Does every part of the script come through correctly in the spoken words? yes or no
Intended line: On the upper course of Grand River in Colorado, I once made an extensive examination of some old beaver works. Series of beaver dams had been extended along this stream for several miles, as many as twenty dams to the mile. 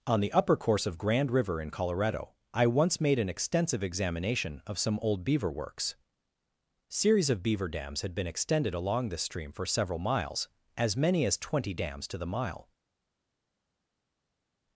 yes